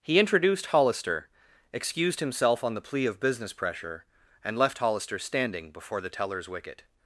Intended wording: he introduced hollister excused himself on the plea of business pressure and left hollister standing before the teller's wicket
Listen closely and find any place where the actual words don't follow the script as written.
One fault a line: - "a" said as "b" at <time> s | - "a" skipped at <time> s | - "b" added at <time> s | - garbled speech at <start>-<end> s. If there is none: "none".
none